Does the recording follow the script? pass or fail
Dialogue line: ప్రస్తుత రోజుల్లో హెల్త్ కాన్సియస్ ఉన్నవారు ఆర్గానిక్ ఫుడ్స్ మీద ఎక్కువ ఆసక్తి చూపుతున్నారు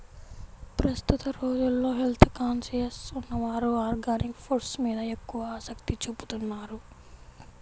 pass